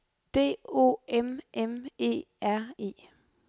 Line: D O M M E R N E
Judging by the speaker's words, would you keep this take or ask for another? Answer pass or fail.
fail